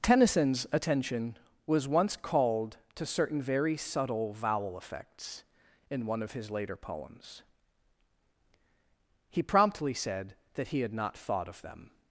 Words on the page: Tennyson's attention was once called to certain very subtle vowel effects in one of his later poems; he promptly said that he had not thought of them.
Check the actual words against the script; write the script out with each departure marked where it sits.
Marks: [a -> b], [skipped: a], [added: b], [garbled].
Tennyson's attention was once called to certain very subtle vowel effects in one of his later poems; he promptly said that he had not thought of them.